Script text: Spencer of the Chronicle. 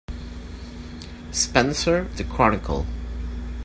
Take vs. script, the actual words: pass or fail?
fail